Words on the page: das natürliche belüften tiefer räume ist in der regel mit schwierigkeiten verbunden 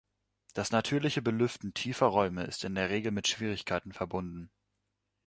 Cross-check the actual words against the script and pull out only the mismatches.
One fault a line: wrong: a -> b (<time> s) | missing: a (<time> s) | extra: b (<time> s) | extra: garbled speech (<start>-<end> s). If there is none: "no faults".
no faults